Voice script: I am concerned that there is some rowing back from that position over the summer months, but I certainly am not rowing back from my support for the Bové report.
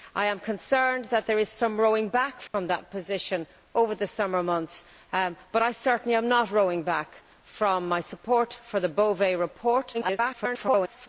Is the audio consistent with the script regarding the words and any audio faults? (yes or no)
no